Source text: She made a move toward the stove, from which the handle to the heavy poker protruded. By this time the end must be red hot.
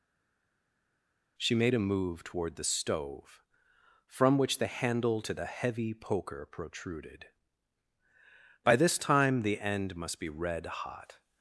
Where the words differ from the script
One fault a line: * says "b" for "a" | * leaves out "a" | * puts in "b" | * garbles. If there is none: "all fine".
all fine